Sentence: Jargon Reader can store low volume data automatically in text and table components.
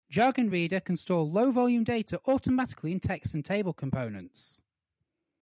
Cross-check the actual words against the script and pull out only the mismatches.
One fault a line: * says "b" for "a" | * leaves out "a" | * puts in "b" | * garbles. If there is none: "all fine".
all fine